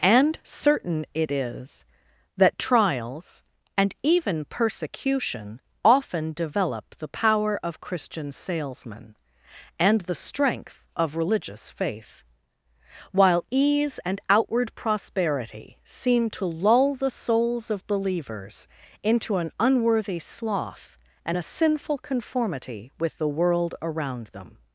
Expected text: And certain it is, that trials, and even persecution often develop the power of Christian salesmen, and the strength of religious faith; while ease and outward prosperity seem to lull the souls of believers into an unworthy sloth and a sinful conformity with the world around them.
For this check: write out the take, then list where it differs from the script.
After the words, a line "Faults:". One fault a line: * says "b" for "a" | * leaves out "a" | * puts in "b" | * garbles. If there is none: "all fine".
And certain it is, that trials, and even persecution often develop the power of Christian salesmen, and the strength of religious faith; while ease and outward prosperity seem to lull the souls of believers into an unworthy sloth and a sinful conformity with the world around them.
Faults:
all fine